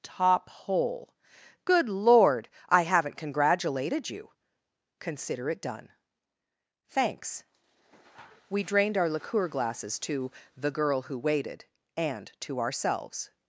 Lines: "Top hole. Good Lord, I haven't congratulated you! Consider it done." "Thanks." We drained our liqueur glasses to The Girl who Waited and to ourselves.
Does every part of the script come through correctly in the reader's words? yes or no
yes